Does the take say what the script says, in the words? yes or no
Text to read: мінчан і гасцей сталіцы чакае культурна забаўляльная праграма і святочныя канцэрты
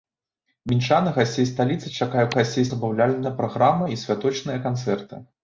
no